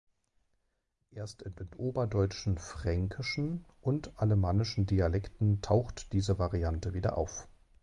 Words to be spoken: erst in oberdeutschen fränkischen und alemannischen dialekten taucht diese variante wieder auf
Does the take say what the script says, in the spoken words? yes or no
no